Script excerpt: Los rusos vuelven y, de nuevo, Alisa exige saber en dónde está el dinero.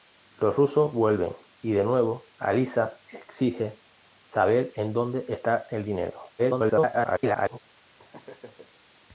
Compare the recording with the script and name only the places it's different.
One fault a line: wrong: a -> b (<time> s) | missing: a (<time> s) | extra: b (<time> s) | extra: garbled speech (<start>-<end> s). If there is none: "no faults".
extra: garbled speech (6.4-7.6 s)